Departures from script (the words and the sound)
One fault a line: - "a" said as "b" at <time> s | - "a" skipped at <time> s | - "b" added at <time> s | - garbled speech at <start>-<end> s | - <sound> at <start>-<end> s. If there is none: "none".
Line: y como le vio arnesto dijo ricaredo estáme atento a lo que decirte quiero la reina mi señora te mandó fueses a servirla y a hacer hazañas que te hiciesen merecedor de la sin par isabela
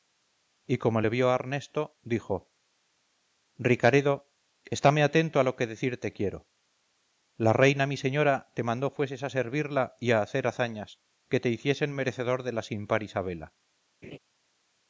- laugh at 14.0-14.2 s